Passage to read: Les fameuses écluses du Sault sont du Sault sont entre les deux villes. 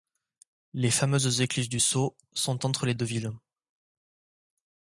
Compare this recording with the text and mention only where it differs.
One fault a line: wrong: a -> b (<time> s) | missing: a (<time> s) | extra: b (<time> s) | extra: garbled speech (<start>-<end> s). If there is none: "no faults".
missing: du Sault sont (2.7 s)